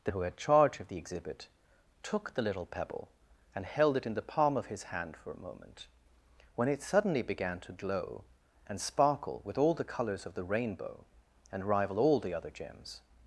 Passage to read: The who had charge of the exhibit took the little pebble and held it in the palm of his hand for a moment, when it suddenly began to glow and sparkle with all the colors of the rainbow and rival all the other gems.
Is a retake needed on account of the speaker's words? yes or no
no